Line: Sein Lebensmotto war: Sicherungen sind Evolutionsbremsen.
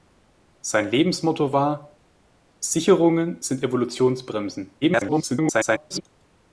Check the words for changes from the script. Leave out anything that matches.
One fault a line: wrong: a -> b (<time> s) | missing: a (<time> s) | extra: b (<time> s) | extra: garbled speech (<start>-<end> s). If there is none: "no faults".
extra: garbled speech (4.8-6.0 s)